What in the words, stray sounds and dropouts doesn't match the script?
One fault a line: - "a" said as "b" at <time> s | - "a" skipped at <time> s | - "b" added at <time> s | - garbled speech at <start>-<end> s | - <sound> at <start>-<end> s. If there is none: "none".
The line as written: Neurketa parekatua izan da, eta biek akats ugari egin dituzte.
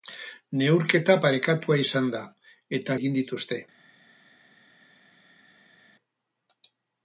- "biek akats ugari" skipped at 3.0 s